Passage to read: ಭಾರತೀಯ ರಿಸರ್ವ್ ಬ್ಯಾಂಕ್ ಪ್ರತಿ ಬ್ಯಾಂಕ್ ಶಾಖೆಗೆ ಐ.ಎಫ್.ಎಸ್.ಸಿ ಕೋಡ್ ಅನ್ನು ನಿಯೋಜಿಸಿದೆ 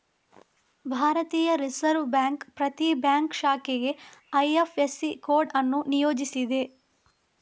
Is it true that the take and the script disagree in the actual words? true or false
false